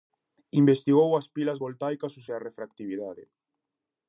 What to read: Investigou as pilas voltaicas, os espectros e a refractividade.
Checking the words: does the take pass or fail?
fail